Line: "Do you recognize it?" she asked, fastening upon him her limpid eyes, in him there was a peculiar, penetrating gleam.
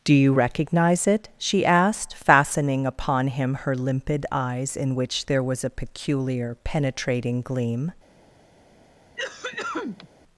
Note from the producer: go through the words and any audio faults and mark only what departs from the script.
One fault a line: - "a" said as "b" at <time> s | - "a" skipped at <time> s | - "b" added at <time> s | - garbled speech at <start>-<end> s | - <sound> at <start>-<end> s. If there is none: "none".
- "him" said as "which" at 4.9 s
- cough at 9.2-10.1 s